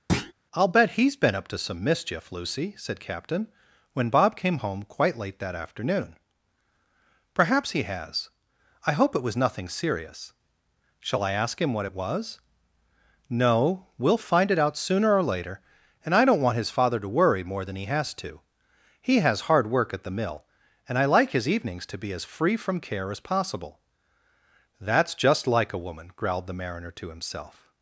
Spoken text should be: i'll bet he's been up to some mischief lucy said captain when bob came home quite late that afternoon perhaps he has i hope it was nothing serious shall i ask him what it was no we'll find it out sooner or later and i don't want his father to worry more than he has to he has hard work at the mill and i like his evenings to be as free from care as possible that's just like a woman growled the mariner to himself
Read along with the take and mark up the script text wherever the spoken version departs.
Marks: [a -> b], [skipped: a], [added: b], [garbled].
i'll bet he's been up to some mischief lucy said captain when bob came home quite late that afternoon perhaps he has i hope it was nothing serious shall i ask him what it was no we'll find it out sooner or later and i don't want his father to worry more than he has to he has hard work at the mill and i like his evenings to be as free from care as possible that's just like a woman growled the mariner to himself